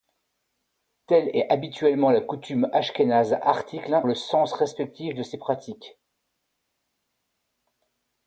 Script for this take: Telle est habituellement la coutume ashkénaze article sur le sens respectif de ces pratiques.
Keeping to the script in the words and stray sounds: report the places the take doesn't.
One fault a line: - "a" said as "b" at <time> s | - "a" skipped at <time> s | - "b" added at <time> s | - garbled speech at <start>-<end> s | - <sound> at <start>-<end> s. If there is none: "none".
- "sur" skipped at 4.0 s